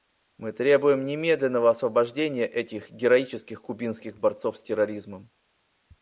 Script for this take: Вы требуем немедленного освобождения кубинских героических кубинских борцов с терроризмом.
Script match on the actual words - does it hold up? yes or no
no